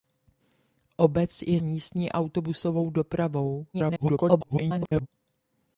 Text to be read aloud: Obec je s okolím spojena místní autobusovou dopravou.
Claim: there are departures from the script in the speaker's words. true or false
true